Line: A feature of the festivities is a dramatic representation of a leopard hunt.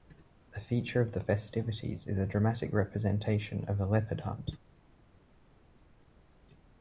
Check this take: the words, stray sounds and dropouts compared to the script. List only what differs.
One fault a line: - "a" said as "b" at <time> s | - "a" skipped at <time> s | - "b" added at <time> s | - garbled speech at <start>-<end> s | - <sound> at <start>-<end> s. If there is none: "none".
none